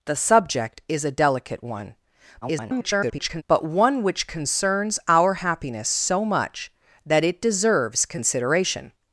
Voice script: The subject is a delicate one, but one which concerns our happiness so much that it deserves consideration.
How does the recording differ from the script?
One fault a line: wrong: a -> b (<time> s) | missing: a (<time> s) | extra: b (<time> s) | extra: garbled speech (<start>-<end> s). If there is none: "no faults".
extra: garbled speech (2.4-3.4 s)